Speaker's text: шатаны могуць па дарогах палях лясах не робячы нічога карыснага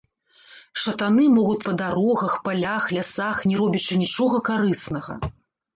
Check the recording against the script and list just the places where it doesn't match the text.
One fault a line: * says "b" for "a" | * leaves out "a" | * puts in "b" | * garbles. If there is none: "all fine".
all fine